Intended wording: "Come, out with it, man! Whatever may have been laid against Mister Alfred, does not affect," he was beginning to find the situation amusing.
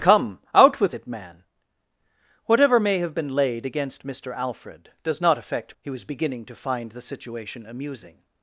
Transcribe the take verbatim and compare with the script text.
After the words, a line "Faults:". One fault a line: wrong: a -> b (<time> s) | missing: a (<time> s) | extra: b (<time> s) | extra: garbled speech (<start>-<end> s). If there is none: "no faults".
"Come, out with it, man! Whatever may have been laid against Mister Alfred, does not affect," he was beginning to find the situation amusing.
Faults:
no faults